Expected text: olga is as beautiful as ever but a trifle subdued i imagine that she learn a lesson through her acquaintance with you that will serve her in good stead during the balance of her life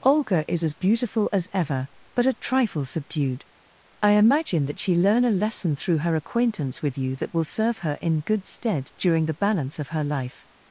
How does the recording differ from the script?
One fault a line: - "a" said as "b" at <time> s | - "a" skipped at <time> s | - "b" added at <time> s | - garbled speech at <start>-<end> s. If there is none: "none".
none